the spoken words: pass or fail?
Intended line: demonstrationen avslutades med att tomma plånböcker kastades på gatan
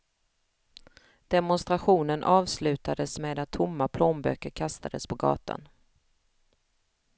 pass